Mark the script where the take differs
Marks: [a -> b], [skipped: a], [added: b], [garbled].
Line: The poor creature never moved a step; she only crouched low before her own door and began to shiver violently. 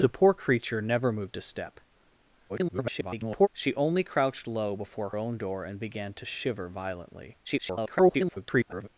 The poor creature never moved a step; [garbled] she only crouched low before [skipped: her] own door and began to shiver violently. [garbled]